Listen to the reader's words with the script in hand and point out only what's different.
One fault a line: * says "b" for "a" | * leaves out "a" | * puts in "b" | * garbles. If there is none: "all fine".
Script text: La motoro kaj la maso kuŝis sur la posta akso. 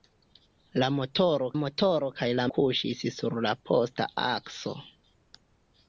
* puts in "motoro"
* leaves out "maso"